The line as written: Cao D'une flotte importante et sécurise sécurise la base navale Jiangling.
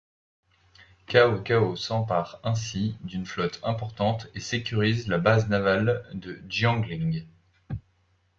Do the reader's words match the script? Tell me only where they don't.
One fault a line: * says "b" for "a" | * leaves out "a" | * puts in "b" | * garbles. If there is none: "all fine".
* puts in "Cao s'empare ainsi"
* leaves out "sécurise"
* puts in "de"